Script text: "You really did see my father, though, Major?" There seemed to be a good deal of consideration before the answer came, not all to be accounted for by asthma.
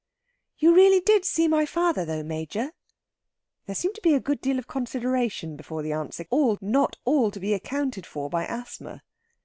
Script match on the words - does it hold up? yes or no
no